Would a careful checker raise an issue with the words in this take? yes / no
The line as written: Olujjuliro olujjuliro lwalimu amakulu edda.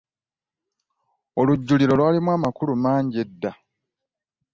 yes